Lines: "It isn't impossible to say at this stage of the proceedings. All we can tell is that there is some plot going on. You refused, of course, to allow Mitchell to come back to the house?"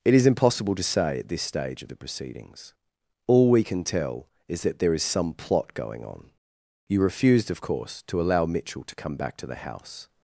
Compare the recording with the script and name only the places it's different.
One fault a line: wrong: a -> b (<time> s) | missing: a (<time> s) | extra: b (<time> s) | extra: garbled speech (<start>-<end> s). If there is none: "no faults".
wrong: isn't -> is (0.1 s)